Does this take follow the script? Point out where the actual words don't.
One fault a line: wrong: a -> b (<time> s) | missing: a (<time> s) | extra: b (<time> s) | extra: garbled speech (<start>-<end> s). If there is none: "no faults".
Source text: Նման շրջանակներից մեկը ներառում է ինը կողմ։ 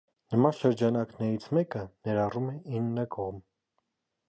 no faults